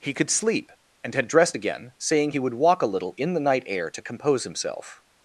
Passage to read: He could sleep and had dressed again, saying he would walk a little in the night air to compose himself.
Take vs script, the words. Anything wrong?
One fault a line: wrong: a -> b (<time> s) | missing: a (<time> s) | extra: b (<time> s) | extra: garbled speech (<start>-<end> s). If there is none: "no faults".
no faults